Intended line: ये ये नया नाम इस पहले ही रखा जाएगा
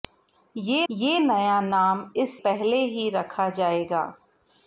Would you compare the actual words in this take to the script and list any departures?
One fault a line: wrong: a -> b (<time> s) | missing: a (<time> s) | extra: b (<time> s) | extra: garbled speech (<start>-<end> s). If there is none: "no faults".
no faults